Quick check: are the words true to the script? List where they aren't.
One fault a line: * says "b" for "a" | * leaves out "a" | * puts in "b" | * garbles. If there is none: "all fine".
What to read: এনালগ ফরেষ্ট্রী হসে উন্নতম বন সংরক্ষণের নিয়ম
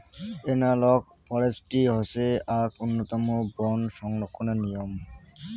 * puts in "আক"